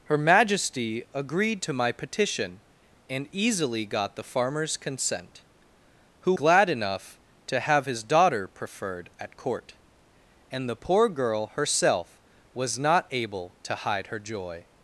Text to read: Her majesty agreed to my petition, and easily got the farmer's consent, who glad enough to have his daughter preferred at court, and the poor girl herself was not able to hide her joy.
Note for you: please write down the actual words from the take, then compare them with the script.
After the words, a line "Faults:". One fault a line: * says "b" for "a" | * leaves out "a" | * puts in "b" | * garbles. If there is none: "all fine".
Her majesty agreed to my petition, and easily got the farmer's consent, who glad enough to have his daughter preferred at court, and the poor girl herself was not able to hide her joy.
Faults:
all fine